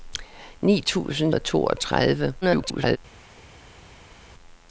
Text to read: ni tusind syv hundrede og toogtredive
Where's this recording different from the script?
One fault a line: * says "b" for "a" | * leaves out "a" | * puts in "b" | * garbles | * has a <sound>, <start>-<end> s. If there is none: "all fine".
* leaves out "syv hundrede"
* garbles